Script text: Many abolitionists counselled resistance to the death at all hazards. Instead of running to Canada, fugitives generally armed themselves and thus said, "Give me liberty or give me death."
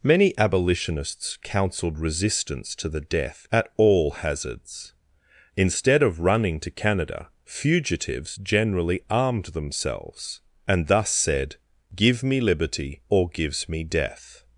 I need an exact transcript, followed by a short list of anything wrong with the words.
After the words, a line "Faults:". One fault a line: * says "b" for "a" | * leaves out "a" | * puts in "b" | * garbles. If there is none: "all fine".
Many abolitionists counselled resistance to the death at all hazards. Instead of running to Canada, fugitives generally armed themselves and thus said, "Give me liberty or gives me death."
Faults:
* says "gives" for "give"